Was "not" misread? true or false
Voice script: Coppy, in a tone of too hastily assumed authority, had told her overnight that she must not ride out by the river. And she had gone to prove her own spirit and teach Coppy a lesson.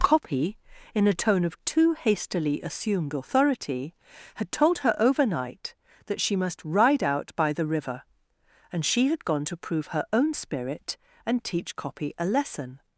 true